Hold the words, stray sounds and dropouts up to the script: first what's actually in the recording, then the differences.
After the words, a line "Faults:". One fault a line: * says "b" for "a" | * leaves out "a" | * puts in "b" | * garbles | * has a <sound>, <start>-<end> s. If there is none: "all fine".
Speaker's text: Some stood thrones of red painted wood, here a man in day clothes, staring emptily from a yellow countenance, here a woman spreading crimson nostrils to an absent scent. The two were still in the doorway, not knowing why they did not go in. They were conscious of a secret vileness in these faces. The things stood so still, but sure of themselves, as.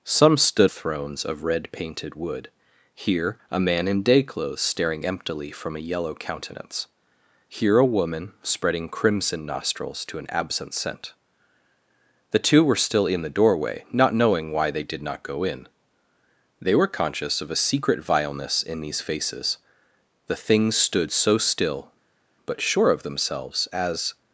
Some stood thrones of red painted wood, here a man in day clothes, staring emptily from a yellow countenance, here a woman spreading crimson nostrils to an absent scent. The two were still in the doorway, not knowing why they did not go in. They were conscious of a secret vileness in these faces. The things stood so still, but sure of themselves, as.
Faults:
all fine